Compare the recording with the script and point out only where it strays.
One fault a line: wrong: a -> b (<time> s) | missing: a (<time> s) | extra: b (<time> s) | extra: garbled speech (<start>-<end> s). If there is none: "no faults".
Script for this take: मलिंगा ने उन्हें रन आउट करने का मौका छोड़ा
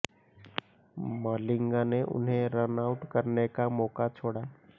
no faults